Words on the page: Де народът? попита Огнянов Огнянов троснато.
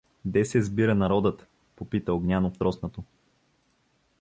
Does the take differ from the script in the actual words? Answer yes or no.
yes